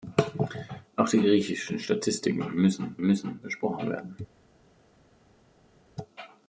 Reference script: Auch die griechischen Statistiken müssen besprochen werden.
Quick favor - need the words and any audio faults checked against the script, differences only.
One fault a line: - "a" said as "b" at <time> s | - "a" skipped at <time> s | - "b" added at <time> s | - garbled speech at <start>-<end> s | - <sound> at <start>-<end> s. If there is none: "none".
- "müssen" added at 3.0 s